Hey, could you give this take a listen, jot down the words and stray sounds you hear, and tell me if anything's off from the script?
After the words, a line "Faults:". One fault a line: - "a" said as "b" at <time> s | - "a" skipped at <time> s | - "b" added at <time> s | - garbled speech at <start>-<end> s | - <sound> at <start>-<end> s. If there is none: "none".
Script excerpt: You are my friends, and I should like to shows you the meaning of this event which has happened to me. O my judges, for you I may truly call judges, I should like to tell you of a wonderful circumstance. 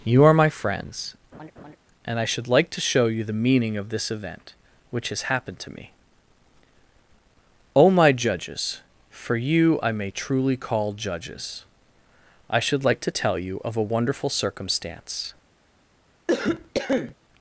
You are my friends, and I should like to show you the meaning of this event which has happened to me. O my judges, for you I may truly call judges, I should like to tell you of a wonderful circumstance.
Faults:
- laugh at 1.3-1.8 s
- "shows" said as "show" at 2.8 s
- cough at 16.3-17.1 s